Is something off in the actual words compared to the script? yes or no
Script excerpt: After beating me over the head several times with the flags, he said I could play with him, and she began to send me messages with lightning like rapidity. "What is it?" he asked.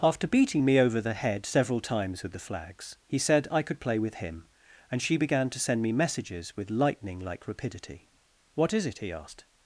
no